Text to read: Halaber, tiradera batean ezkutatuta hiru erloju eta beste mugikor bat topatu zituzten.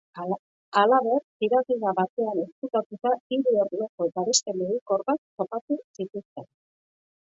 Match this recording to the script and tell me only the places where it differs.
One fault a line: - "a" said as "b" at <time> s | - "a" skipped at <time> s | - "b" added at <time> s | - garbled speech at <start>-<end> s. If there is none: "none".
none